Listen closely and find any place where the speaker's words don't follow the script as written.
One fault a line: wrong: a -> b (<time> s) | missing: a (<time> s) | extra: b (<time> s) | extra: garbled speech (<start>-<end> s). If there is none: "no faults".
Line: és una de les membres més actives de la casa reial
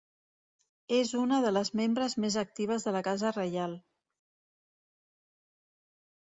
no faults